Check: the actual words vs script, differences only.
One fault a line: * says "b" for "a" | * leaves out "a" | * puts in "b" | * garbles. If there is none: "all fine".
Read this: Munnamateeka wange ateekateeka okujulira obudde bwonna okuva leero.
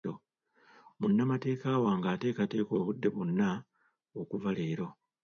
* leaves out "okujulira"